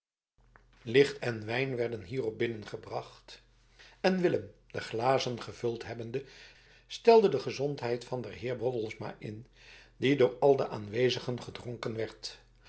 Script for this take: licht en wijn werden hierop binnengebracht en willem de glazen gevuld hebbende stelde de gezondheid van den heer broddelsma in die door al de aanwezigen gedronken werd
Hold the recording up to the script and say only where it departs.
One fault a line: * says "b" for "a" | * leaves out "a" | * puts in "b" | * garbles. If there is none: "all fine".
all fine